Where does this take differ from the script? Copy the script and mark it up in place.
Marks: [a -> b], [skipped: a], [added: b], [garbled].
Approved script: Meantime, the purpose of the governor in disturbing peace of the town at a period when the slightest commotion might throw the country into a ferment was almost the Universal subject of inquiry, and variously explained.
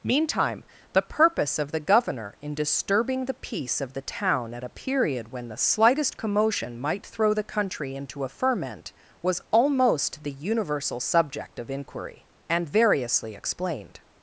Meantime, the purpose of the governor in disturbing [added: the] peace of the town at a period when the slightest commotion might throw the country into a ferment was almost the Universal subject of inquiry, and variously explained.